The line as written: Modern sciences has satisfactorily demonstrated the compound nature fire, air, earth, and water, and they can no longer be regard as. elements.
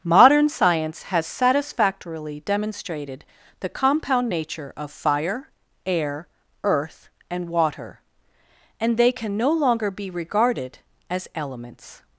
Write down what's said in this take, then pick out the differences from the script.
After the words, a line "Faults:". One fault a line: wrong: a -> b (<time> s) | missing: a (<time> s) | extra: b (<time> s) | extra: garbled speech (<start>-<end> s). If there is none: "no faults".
Modern science has satisfactorily demonstrated the compound nature of fire, air, earth, and water, and they can no longer be regarded as. elements.
Faults:
wrong: sciences -> science (0.5 s)
extra: of (4.8 s)
wrong: regard -> regarded (10.1 s)